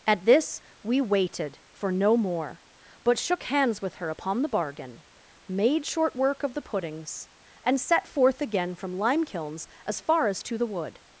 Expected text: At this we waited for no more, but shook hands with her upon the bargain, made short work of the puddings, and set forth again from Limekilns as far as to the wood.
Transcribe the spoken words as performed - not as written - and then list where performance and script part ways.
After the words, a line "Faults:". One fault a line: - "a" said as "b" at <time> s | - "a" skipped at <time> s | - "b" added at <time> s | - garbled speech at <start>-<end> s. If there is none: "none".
At this we waited for no more, but shook hands with her upon the bargain, made short work of the puddings, and set forth again from Limekilns as far as to the wood.
Faults:
none